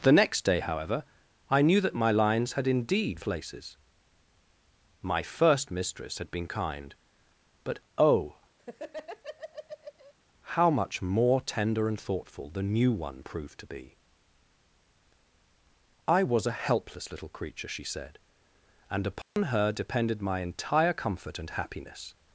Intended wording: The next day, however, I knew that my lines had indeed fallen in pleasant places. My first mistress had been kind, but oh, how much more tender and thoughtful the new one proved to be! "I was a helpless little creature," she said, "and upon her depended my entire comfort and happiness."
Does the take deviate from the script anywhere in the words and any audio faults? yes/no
yes